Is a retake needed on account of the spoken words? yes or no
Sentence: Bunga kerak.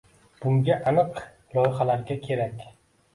yes